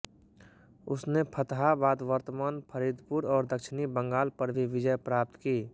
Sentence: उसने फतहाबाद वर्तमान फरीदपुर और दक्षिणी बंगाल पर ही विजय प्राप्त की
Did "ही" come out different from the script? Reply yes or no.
yes